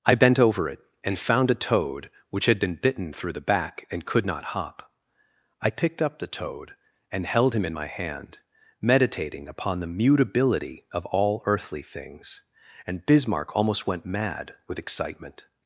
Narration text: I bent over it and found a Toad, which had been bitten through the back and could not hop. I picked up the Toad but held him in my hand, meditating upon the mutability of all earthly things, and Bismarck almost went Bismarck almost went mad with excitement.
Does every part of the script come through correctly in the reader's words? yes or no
no